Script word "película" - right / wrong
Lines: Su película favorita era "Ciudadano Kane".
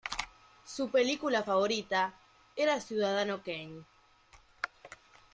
right